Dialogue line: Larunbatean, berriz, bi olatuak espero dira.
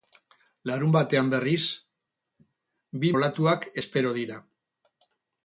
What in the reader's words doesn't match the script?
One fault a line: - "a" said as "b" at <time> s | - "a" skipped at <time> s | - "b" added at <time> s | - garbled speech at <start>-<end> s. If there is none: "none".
none